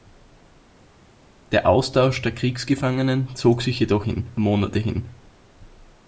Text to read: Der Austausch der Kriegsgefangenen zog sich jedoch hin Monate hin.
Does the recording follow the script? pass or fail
pass